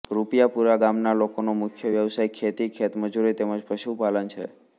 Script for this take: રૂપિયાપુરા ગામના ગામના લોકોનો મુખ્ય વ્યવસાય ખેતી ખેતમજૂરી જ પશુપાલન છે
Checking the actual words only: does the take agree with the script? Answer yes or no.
no